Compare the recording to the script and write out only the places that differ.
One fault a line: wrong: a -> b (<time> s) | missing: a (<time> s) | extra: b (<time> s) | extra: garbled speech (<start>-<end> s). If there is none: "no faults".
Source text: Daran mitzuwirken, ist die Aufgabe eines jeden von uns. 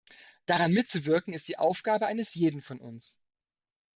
no faults